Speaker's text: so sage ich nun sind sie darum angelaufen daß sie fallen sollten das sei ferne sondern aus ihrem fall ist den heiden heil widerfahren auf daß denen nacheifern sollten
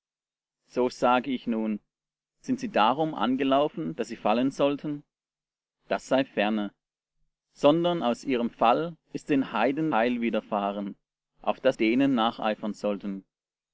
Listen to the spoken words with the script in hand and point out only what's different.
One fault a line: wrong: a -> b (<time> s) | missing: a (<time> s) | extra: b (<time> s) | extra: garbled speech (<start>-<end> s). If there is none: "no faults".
no faults